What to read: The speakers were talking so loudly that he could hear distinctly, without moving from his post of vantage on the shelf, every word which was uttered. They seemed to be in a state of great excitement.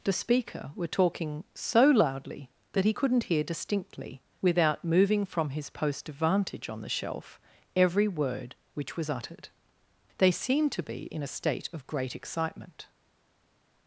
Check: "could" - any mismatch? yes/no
yes